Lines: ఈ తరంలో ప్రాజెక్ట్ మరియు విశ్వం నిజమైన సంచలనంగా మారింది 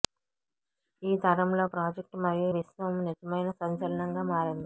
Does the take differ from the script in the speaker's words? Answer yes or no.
no